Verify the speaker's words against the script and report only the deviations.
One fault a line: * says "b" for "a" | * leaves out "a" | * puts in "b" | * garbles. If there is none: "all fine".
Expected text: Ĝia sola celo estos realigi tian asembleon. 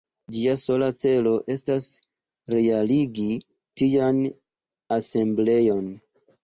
* says "estas" for "estos"